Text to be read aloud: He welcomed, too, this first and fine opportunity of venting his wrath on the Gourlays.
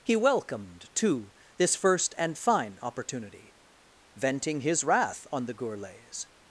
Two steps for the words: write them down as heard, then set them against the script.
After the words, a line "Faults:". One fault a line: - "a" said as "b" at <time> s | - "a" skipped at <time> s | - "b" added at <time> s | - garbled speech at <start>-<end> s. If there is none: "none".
He welcomed, too, this first and fine opportunity venting his wrath on the Gourlays.
Faults:
- "of" skipped at 3.5 s